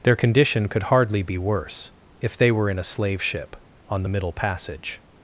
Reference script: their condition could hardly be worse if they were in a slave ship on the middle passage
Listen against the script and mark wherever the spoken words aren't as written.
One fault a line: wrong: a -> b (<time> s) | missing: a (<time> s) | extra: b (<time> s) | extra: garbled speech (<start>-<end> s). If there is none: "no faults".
no faults